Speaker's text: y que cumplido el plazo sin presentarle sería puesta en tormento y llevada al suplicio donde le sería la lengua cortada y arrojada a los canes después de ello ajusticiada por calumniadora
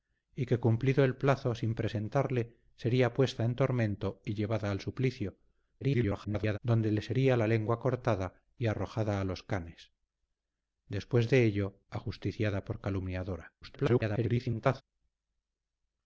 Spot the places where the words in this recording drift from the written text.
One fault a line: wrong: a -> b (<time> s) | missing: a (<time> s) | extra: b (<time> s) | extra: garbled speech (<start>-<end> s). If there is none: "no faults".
extra: garbled speech (5.8-6.6 s)
extra: garbled speech (13.6-14.8 s)